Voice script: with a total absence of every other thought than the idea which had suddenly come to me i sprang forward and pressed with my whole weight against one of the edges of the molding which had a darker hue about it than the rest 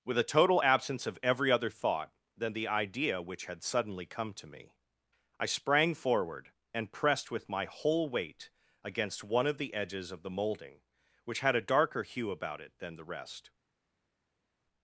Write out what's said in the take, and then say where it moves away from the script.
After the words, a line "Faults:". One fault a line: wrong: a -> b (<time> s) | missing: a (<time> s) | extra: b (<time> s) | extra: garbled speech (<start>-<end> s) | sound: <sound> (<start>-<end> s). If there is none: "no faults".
with a total absence of every other thought than the idea which had suddenly come to me i sprang forward and pressed with my whole weight against one of the edges of the molding which had a darker hue about it than the rest
Faults:
no faults